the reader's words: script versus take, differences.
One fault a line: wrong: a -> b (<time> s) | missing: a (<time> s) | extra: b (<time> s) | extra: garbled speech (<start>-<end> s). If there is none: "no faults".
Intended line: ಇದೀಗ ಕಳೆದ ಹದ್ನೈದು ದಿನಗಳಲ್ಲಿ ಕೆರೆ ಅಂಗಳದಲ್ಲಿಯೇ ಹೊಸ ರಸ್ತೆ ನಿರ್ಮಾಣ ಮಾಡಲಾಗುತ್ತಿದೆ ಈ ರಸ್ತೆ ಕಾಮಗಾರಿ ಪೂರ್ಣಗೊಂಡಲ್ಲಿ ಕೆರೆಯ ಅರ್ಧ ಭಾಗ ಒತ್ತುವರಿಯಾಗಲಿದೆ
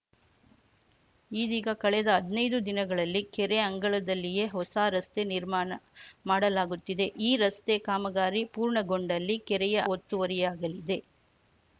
missing: ಅರ್ಧ ಭಾಗ (9.8 s)